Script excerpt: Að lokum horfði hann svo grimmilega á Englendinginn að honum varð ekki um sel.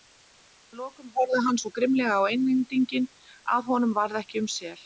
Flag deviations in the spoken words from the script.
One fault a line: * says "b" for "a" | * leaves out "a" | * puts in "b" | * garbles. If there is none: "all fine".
all fine